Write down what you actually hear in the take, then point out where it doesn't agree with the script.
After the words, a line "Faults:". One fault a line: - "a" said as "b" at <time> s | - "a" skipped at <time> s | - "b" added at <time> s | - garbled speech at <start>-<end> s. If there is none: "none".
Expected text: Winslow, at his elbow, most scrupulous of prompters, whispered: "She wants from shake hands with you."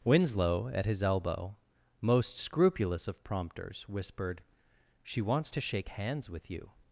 Winslow, at his elbow, most scrupulous of prompters, whispered: "She wants to shake hands with you."
Faults:
- "from" said as "to" at 5.5 s